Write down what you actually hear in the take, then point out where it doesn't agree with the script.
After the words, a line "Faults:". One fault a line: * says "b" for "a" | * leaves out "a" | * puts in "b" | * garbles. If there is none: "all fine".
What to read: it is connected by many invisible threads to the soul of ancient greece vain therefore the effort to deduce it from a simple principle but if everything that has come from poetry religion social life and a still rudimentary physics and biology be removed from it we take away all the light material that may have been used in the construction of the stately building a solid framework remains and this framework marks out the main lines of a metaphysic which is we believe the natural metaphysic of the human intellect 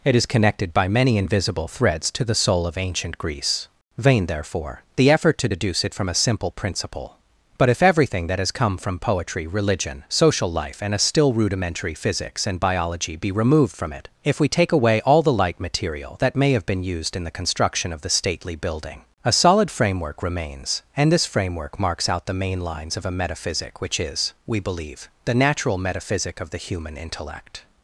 it is connected by many invisible threads to the soul of ancient greece vain therefore the effort to deduce it from a simple principle but if everything that has come from poetry religion social life and a still rudimentary physics and biology be removed from it if we take away all the light material that may have been used in the construction of the stately building a solid framework remains and this framework marks out the main lines of a metaphysic which is we believe the natural metaphysic of the human intellect
Faults:
* puts in "if"